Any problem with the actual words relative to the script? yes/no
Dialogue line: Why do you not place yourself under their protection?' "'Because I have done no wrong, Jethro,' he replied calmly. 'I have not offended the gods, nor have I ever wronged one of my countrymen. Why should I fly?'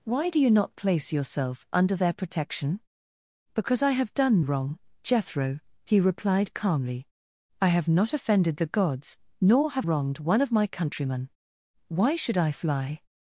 yes